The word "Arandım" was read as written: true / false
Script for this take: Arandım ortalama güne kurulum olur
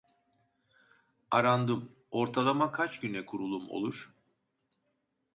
true